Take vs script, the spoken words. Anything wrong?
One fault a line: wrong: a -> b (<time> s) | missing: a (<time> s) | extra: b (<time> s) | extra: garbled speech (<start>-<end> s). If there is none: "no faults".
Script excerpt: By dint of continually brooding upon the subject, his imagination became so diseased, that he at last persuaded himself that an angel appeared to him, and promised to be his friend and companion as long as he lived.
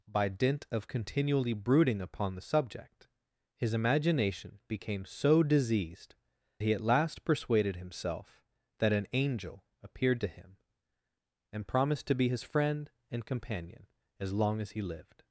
missing: that (6.2 s)